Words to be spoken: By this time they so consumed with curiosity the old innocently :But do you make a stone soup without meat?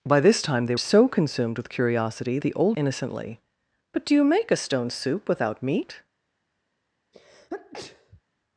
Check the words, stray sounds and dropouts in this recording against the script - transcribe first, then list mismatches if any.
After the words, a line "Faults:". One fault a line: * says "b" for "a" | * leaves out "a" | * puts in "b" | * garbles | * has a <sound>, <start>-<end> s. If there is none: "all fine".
By this time they so consumed with curiosity the old innocently :But do you make a stone soup without meat?
Faults:
* has a sneeze, 7.1-8.2 s